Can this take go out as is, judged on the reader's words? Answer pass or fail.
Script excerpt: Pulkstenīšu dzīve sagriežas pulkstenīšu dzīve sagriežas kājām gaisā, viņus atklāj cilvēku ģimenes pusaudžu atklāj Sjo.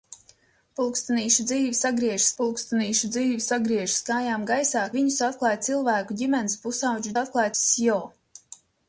pass